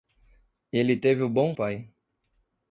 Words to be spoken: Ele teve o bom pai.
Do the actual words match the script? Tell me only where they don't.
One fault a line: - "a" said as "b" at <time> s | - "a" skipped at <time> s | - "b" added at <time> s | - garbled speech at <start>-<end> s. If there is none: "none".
none